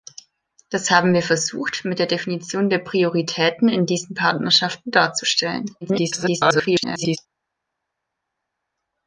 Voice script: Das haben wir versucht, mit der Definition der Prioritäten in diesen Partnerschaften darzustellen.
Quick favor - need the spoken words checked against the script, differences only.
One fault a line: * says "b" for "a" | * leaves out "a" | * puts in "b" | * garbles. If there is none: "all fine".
* garbles